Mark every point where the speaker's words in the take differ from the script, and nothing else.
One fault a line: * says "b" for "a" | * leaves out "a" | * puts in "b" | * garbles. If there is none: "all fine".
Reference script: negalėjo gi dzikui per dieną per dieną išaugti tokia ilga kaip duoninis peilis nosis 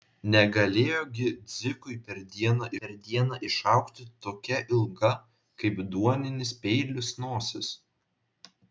all fine